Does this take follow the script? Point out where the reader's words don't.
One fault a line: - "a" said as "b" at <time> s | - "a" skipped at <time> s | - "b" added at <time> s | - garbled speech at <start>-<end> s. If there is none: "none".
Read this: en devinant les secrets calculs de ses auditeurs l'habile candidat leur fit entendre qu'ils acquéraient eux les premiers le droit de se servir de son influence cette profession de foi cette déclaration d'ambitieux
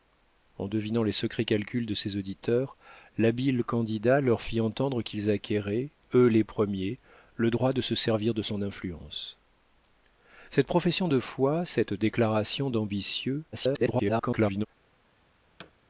- garbled speech at 13.5-14.7 s